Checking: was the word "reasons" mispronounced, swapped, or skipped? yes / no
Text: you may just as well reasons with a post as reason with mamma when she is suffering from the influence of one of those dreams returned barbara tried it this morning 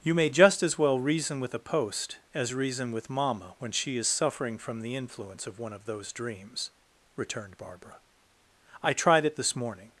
yes